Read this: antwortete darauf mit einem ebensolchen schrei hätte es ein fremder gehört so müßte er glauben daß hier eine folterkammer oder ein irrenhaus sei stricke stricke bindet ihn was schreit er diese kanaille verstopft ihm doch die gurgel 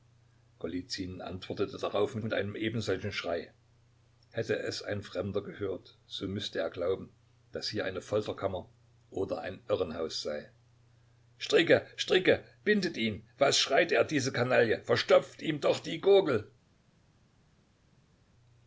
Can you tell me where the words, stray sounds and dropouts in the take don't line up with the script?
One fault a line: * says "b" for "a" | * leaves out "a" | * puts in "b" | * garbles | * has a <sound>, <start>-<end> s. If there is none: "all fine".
* puts in "mit"